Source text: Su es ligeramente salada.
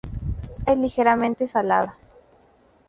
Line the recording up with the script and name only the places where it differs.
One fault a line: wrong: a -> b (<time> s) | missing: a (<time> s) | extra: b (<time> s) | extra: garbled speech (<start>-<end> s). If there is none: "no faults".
no faults